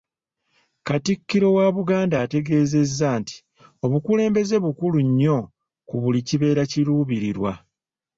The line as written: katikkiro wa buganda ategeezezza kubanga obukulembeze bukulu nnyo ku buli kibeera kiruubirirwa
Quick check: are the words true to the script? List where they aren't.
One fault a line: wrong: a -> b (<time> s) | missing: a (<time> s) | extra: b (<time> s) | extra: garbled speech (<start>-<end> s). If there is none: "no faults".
wrong: kubanga -> nti (3.2 s)